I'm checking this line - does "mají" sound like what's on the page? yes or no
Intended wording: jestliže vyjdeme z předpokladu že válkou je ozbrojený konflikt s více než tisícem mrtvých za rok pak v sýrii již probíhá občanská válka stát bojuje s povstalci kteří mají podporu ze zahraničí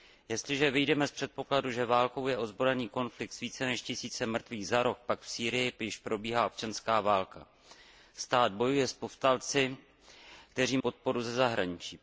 no